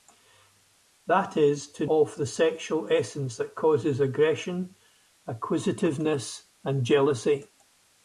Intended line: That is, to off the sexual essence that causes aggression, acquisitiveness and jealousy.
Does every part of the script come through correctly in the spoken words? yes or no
yes